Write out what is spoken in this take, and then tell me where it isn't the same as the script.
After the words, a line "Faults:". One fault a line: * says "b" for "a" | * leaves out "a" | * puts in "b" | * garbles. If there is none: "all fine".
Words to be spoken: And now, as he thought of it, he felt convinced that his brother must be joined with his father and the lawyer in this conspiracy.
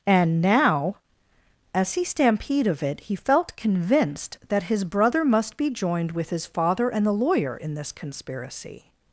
And now, as he stampede of it, he felt convinced that his brother must be joined with his father and the lawyer in this conspiracy.
Faults:
* says "stampede" for "thought"